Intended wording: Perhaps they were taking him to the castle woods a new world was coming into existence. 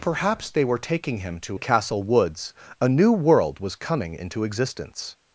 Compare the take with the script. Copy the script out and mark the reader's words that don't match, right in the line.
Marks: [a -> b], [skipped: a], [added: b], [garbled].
Perhaps they were taking him to the castle woods a new world was coming into existence.